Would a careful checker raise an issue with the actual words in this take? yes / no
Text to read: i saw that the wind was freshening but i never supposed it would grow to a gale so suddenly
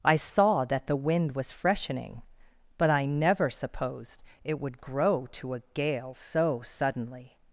no